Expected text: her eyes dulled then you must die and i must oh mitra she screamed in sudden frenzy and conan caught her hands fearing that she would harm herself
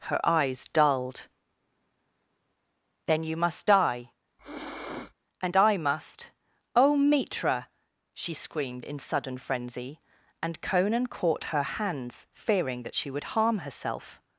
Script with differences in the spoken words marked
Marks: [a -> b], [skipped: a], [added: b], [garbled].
her eyes dulled then you must die and i must oh mitra she screamed in sudden frenzy and conan caught her hands fearing that she would harm herself